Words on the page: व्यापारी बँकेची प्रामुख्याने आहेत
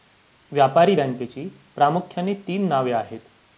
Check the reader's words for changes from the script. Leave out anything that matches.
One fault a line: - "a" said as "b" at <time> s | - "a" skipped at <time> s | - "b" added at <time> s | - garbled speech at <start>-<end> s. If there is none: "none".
- "तीन नावे" added at 2.5 s